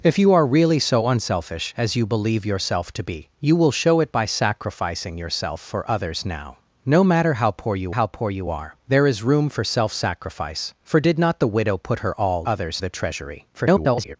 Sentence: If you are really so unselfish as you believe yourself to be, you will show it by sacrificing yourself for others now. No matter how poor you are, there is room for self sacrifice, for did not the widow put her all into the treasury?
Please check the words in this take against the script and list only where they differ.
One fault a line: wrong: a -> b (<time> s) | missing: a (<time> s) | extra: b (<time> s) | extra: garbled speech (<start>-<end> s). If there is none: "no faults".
extra: how poor you (7.9 s)
wrong: into -> others (12.5 s)
extra: garbled speech (13.5-14.2 s)